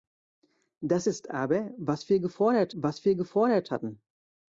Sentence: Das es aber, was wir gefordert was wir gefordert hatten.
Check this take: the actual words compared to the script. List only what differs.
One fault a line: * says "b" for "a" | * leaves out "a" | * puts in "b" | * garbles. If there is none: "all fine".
all fine